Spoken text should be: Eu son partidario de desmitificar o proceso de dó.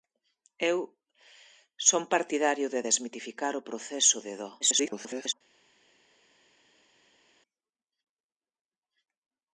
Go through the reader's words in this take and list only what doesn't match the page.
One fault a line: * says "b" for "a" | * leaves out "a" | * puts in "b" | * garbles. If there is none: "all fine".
* garbles